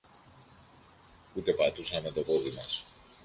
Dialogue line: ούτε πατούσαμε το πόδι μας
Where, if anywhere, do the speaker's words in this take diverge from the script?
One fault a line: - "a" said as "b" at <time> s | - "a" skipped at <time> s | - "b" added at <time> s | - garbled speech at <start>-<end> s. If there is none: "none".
none